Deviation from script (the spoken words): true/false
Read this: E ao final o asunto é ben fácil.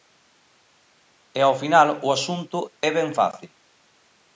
false